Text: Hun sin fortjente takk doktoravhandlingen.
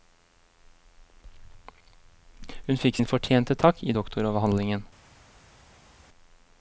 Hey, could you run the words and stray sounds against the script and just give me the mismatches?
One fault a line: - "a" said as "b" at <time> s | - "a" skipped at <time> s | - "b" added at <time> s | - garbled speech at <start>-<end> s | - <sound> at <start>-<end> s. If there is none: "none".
- "fikk" added at 2.8 s
- "i" added at 3.8 s